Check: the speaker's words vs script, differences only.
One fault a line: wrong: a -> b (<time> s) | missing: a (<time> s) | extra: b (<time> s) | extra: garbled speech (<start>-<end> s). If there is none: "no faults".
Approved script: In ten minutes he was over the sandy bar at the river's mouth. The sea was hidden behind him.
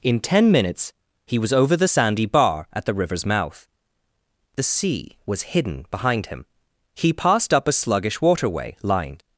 extra: He passed up a sluggish waterway lined (6.9 s)